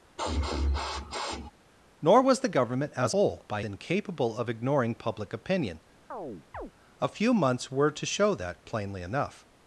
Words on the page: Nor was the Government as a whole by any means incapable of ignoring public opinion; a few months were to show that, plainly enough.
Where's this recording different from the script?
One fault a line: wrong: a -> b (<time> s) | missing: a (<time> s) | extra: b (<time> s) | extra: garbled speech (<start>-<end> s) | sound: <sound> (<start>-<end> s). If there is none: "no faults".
sound: sniff (0.2-1.5 s)
missing: a (3.1 s)
missing: any means (3.6 s)
sound: chirp (6.1-6.7 s)